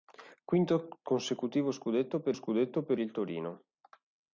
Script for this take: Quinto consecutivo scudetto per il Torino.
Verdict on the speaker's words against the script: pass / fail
fail